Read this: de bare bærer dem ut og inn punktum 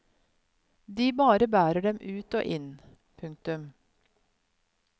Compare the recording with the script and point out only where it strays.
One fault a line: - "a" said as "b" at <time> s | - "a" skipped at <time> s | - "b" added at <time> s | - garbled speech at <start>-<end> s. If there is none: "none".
none